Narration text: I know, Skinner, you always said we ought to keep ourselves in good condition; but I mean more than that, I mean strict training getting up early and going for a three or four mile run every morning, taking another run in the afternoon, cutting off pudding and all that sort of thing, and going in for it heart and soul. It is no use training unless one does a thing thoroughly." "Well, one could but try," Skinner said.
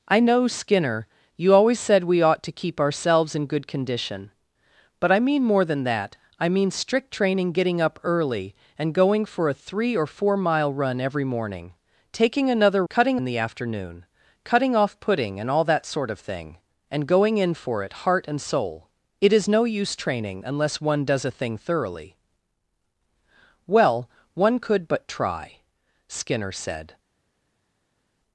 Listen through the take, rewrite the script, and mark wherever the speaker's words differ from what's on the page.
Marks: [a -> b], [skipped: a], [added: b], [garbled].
I know, Skinner, you always said we ought to keep ourselves in good condition; but I mean more than that, I mean strict training getting up early and going for a three or four mile run every morning, taking another [run -> cutting] in the afternoon, cutting off pudding and all that sort of thing, and going in for it heart and soul. It is no use training unless one does a thing thoroughly." "Well, one could but try," Skinner said.